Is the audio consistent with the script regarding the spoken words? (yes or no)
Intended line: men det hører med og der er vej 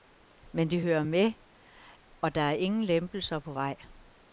no